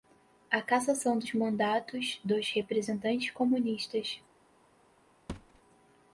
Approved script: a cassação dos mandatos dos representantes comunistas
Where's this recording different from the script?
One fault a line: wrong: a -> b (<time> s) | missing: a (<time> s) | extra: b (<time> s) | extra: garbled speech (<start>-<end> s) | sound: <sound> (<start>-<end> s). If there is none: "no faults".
sound: thud (5.3-5.6 s)